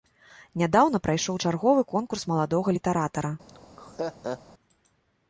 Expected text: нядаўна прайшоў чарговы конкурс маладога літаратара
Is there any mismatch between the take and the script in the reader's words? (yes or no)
no